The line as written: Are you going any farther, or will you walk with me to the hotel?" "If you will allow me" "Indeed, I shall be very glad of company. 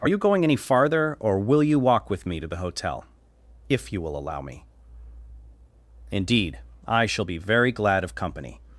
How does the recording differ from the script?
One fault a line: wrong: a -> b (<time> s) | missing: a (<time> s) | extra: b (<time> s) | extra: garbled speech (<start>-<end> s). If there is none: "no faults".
no faults